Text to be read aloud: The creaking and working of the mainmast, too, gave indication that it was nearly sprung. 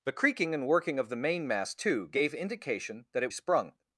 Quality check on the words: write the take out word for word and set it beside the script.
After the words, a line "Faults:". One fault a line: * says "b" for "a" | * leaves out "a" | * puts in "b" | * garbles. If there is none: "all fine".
The creaking and working of the mainmast, too, gave indication that it sprung.
Faults:
* leaves out "was nearly"